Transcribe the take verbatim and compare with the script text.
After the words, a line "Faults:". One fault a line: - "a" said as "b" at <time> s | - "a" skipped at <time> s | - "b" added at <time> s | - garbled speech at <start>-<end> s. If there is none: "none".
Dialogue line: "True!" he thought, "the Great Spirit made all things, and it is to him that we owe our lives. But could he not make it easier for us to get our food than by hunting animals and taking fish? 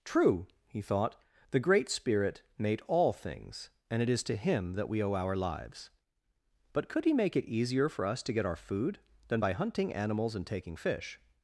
"True!" he thought, "the Great Spirit made all things, and it is to him that we owe our lives. But could he make it easier for us to get our food than by hunting animals and taking fish?
Faults:
- "not" skipped at 7.1 s